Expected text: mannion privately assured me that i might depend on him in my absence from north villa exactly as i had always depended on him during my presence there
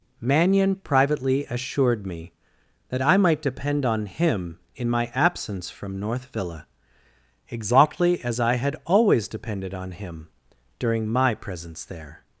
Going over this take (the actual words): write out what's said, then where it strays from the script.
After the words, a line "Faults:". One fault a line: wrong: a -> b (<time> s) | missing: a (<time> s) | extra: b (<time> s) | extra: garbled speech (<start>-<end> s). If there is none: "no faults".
mannion privately assured me that i might depend on him in my absence from north villa exactly as i had always depended on him during my presence there
Faults:
no faults